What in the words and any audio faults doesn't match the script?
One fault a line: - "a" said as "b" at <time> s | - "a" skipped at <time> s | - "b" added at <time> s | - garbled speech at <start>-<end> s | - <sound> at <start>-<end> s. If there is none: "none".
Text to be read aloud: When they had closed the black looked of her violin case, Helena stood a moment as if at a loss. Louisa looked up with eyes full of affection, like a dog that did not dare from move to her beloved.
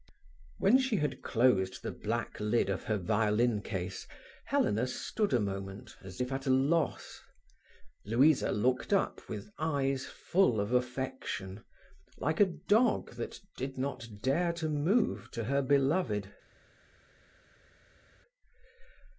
- "they" said as "she" at 0.8 s
- "looked" said as "lid" at 2.4 s
- "from" said as "to" at 14.5 s